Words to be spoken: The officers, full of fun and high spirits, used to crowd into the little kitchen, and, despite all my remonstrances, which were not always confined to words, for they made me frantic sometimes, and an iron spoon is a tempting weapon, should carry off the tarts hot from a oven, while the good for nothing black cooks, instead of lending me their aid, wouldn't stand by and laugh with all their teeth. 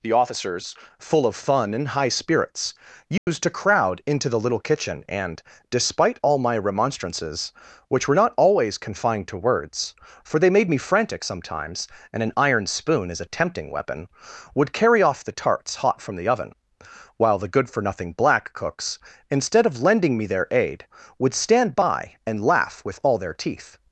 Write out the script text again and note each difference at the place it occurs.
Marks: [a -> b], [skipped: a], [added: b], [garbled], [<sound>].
The officers, full of fun and high spirits, used [dropout] to crowd into the little kitchen, and, despite all my remonstrances, which were not always confined to words, for they made me frantic sometimes, and an iron spoon is a tempting weapon, [should -> would] carry off the tarts hot from [a -> the] oven, while the good for nothing black cooks, instead of lending me their aid, [wouldn't -> would] stand by and laugh with all their teeth.